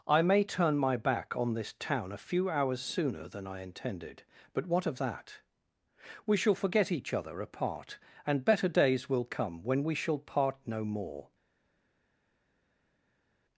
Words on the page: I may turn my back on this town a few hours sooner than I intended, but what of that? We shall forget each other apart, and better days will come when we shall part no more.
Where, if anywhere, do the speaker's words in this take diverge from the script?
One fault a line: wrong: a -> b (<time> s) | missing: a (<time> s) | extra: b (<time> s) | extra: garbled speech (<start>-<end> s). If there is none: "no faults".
no faults